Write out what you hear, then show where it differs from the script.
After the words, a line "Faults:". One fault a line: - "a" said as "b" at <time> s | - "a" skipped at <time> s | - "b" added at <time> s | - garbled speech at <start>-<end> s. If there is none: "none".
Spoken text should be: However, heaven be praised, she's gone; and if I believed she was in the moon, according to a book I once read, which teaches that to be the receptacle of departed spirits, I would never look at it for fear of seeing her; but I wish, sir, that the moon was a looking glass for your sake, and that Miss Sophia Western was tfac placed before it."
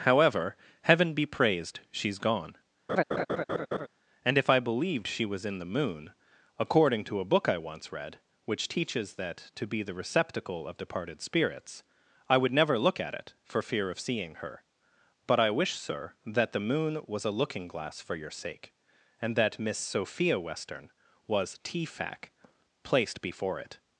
However, heaven be praised, she's gone; and if I believed she was in the moon, according to a book I once read, which teaches that to be the receptacle of departed spirits, I would never look at it for fear of seeing her; but I wish, sir, that the moon was a looking glass for your sake, and that Miss Sophia Western was tfac placed before it."
Faults:
none